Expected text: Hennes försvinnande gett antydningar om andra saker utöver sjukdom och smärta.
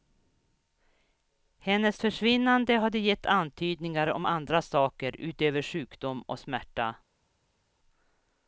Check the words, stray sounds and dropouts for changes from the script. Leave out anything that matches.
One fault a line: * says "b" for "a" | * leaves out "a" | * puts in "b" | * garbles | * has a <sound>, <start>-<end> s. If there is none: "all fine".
* puts in "hade"